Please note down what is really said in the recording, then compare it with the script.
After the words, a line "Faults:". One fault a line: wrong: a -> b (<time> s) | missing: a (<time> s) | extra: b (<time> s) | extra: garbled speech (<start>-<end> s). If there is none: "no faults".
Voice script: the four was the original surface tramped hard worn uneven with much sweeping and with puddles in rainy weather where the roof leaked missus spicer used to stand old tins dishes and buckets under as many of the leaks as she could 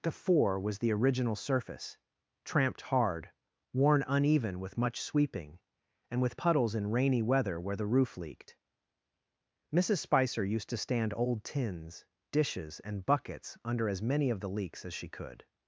the four was the original surface tramped hard worn uneven with much sweeping and with puddles in rainy weather where the roof leaked missus spicer used to stand old tins dishes and buckets under as many of the leaks as she could
Faults:
no faults